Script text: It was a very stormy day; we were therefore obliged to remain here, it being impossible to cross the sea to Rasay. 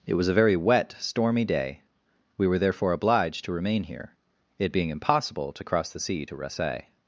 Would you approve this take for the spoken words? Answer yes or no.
no